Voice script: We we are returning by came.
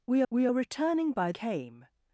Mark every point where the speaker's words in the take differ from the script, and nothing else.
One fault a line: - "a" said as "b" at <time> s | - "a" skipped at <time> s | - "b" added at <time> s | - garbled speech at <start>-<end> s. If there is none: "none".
none